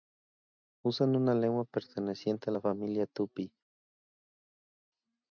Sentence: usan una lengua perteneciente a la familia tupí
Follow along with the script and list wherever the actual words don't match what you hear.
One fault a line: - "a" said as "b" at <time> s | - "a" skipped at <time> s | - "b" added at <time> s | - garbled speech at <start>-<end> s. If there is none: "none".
none